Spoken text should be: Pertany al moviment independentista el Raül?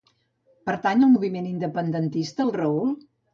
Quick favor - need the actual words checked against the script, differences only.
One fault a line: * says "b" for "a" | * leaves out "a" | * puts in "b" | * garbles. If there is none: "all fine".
all fine